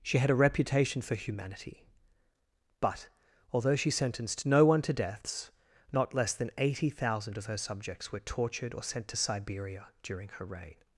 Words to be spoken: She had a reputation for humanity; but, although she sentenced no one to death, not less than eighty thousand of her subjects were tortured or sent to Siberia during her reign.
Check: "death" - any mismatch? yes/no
yes